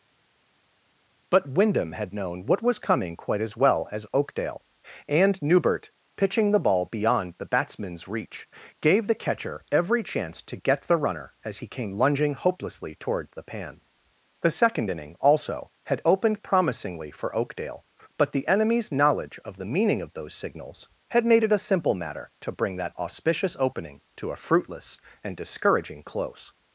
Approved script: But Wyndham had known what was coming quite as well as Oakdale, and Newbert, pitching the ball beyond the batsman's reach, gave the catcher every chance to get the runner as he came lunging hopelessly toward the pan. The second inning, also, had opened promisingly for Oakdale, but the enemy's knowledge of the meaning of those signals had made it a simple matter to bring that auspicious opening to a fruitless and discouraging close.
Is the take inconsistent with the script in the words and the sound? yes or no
no